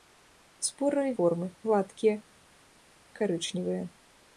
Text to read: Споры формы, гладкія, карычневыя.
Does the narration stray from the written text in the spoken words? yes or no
no